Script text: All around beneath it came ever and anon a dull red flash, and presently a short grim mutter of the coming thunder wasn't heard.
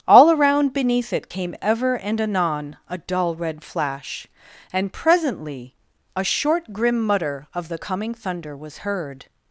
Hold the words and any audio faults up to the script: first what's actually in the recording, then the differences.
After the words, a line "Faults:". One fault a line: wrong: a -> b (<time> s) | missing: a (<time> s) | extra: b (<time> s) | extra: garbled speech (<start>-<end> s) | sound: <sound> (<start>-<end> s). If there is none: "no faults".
All around beneath it came ever and anon a dull red flash, and presently a short grim mutter of the coming thunder was heard.
Faults:
wrong: wasn't -> was (8.5 s)